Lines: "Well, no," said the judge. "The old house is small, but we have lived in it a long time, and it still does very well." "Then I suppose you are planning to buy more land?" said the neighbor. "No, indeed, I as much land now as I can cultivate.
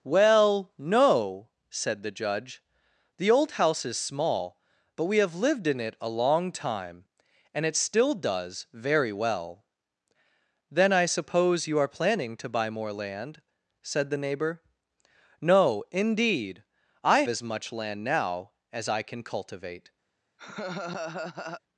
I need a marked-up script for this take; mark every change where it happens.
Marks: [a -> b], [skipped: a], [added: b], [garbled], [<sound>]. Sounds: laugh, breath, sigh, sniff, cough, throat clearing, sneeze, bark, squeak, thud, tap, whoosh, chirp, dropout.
"Well, no," said the judge. "The old house is small, but we have lived in it a long time, and it still does very well." "Then I suppose you are planning to buy more land?" said the neighbor. "No, indeed, I as much land now as I can cultivate. [laugh]